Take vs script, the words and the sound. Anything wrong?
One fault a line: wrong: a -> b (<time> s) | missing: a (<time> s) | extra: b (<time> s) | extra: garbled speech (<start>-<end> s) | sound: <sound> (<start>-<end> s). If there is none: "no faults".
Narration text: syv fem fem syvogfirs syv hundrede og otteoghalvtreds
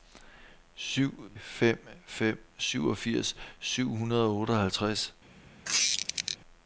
sound: squeak (5.6-6.4 s)